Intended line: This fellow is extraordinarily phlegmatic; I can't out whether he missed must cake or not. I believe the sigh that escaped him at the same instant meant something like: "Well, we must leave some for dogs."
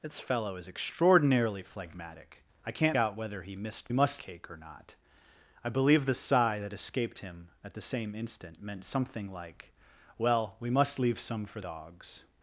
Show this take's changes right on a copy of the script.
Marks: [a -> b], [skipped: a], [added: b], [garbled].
This fellow is extraordinarily phlegmatic; I can't out whether he missed must cake or not. I believe the sigh that escaped him at the same instant meant something like: "Well, we must leave some for dogs."